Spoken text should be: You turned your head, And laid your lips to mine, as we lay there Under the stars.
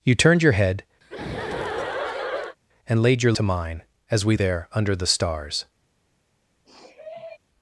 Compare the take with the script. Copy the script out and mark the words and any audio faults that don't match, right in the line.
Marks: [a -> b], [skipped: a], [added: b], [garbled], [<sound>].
You turned your head, [laugh] And laid your [skipped: lips] to mine, as we [skipped: lay] there Under the stars. [sniff]